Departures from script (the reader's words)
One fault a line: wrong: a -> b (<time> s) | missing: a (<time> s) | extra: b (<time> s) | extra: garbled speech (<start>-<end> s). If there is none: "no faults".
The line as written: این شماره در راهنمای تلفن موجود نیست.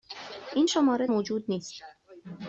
missing: در راهنمای تلفن (1.1 s)